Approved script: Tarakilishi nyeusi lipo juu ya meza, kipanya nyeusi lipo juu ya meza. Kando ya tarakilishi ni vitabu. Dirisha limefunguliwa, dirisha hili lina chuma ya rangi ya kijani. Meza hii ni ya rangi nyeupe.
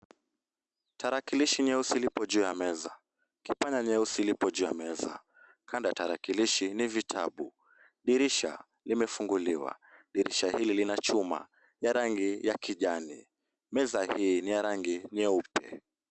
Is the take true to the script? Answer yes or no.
yes